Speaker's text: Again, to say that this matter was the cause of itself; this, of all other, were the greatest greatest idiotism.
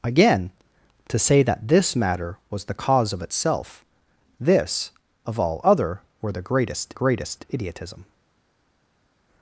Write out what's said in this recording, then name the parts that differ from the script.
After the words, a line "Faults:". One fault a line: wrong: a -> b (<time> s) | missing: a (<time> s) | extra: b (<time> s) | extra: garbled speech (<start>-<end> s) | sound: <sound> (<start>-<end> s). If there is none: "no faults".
Again, to say that this matter was the cause of itself; this, of all other, were the greatest greatest idiotism.
Faults:
no faults